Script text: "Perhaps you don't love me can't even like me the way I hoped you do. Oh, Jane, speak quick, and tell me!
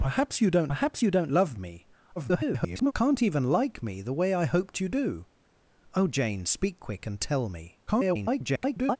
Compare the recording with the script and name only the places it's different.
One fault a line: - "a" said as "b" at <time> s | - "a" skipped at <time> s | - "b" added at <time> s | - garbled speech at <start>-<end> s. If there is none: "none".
- "perhaps you don't" added at 0.7 s
- garbled speech at 2.2-2.9 s
- garbled speech at 7.9-9.0 s